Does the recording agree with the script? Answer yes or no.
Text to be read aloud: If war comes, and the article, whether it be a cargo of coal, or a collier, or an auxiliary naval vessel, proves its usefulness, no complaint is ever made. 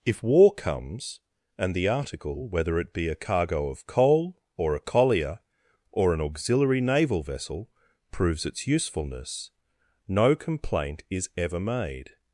yes